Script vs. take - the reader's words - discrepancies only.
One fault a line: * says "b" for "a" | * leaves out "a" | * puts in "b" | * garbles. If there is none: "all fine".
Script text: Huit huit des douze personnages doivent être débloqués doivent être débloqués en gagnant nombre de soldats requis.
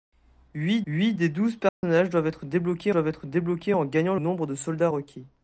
all fine